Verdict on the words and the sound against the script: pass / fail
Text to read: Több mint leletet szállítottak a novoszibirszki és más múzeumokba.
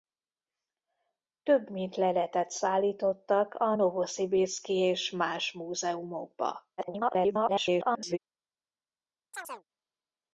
fail